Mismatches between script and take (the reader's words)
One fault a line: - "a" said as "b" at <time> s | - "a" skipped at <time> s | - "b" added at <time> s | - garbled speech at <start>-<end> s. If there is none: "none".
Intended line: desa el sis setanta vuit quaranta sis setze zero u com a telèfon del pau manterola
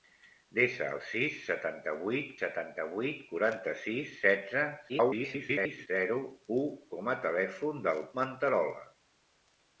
- "setanta vuit" added at 2.4 s
- garbled speech at 4.9-5.9 s
- "pau" skipped at 8.0 s